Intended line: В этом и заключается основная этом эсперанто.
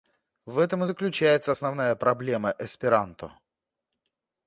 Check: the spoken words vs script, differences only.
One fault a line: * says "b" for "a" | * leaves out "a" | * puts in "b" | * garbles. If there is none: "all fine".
* says "проблема" for "этом"